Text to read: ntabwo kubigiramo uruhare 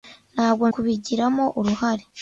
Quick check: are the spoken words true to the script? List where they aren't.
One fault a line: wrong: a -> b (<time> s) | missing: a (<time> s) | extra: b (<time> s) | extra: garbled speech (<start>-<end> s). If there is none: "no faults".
no faults